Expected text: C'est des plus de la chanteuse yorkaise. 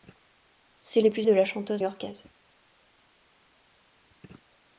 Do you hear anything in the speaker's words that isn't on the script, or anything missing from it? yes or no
no